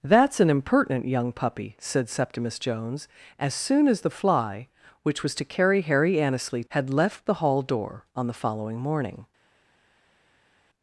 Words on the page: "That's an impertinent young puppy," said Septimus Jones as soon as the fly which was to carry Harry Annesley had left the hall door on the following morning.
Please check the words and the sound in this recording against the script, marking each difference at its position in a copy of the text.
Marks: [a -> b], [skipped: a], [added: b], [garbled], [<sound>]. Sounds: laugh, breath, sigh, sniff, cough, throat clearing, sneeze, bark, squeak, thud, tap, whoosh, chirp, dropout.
"That's an impertinent young puppy," said Septimus Jones as soon as the fly which was to carry Harry Annesley had left the hall door on the following morning.